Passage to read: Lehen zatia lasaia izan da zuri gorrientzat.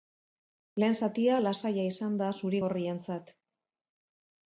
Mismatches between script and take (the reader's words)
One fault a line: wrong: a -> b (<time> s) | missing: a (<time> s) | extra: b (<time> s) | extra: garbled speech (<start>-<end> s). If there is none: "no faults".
no faults